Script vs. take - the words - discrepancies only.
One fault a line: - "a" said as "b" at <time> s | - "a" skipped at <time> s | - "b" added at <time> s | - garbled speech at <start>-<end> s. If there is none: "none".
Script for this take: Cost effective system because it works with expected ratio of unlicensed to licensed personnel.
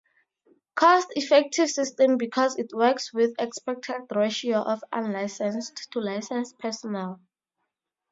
none